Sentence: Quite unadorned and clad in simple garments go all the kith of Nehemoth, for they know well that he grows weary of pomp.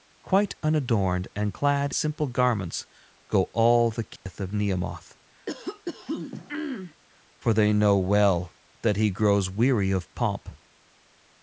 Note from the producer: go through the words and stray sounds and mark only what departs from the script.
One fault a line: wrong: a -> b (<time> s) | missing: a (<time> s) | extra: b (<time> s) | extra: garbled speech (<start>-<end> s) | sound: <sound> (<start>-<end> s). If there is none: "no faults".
missing: in (1.9 s)
sound: dropout (4.2-4.3 s)
sound: throat clearing (5.5-7.0 s)